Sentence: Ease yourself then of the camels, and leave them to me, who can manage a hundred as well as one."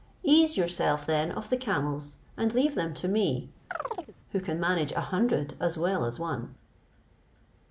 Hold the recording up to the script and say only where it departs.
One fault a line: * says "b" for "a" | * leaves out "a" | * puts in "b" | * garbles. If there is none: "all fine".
all fine